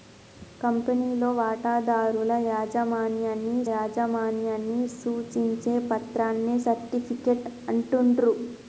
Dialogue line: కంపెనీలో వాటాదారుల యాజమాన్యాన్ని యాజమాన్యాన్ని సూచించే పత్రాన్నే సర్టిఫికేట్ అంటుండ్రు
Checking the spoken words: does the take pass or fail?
pass